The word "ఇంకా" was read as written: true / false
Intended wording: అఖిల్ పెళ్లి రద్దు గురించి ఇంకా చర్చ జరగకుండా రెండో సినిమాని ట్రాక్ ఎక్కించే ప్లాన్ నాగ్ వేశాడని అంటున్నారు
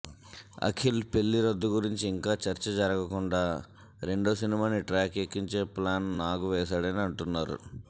true